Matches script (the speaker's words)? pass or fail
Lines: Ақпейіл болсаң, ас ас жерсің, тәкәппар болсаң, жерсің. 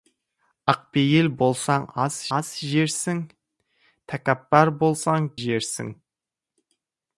pass